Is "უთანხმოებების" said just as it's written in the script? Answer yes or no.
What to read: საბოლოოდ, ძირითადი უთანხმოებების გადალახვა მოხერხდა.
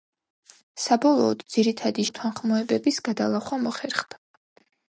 yes